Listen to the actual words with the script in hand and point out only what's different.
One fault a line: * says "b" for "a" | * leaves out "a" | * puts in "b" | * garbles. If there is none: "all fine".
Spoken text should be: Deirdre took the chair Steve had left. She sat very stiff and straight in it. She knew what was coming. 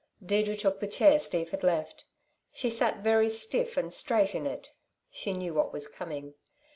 all fine